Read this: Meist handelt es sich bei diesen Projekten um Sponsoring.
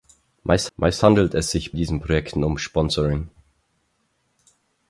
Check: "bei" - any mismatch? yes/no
yes